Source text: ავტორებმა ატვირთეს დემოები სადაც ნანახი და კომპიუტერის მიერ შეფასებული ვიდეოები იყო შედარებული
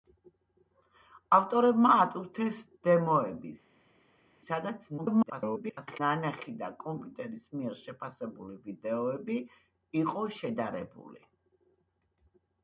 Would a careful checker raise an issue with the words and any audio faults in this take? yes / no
yes